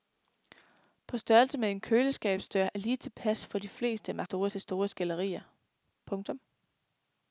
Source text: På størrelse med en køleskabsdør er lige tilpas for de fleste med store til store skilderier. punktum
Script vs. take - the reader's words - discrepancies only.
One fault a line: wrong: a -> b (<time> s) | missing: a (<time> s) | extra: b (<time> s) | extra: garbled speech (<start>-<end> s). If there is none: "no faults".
no faults